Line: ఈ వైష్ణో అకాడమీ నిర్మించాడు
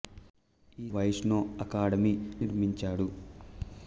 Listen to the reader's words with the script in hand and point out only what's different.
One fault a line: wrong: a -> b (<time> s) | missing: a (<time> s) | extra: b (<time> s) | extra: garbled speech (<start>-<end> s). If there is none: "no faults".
no faults